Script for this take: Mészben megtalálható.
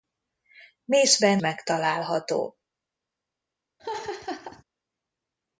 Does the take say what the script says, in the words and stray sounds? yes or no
no